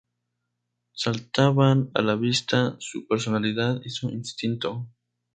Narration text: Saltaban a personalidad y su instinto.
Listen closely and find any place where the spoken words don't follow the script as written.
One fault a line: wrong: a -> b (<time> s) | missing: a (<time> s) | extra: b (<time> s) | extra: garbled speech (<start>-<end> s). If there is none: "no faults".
extra: la vista su (2.0 s)